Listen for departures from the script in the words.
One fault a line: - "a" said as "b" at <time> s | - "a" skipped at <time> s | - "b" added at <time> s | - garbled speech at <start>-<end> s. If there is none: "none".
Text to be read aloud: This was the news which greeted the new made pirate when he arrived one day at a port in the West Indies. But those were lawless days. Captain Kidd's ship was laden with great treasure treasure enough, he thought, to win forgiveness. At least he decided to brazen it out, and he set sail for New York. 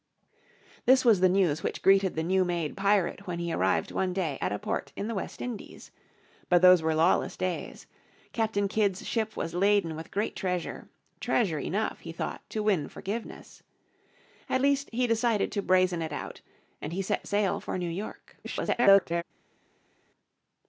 - garbled speech at 18.4-19.2 s